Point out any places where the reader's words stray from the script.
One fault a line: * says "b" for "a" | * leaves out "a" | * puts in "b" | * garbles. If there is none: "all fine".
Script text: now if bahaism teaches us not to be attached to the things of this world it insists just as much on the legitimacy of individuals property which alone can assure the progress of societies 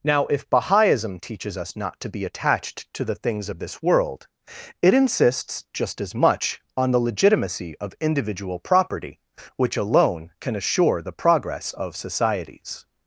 * says "individual" for "individuals"